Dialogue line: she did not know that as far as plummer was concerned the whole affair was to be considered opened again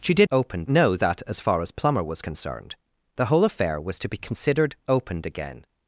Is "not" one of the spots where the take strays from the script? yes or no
yes